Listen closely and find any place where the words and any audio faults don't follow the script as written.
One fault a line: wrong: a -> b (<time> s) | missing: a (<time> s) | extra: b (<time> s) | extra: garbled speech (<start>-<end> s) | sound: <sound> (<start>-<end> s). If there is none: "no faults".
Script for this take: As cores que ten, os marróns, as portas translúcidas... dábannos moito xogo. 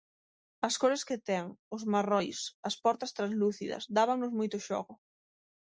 no faults